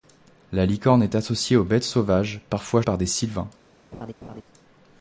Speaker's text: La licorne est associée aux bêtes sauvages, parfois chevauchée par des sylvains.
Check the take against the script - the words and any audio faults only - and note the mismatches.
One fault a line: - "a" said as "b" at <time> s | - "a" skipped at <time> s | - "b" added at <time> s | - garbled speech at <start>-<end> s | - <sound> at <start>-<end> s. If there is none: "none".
- "chevauchée" skipped at 2.8 s
- laugh at 3.9-4.4 s